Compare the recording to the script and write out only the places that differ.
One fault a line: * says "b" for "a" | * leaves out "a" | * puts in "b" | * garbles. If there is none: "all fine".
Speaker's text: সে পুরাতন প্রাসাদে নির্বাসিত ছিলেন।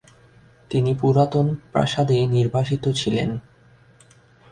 * says "তিনি" for "সে"